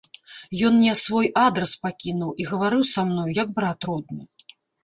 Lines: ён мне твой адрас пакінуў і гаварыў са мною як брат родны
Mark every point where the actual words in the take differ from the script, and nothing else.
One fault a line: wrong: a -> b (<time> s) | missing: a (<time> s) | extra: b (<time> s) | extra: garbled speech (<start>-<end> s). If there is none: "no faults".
wrong: твой -> свой (1.0 s)